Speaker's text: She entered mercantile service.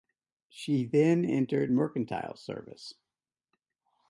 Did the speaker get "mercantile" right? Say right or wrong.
right